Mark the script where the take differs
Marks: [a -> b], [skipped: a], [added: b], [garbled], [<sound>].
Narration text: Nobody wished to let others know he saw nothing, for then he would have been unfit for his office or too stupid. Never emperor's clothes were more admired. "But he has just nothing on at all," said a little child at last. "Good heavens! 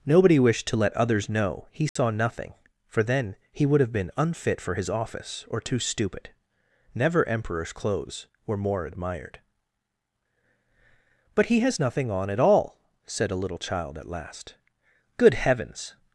Nobody wished to let others know he saw [dropout] nothing, for then he would have been unfit for his office or too stupid. Never emperor's clothes were more admired. "But he has [skipped: just] nothing on at all," said a little child at last. "Good heavens!